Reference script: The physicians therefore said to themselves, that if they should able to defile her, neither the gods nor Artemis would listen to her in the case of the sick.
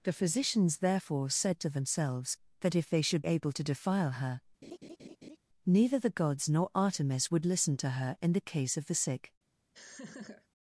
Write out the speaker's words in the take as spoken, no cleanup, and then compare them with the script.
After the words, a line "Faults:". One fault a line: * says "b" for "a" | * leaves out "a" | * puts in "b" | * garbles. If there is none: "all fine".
The physicians therefore said to themselves, that if they should able to defile her, neither the gods nor Artemis would listen to her in the case of the sick.
Faults:
all fine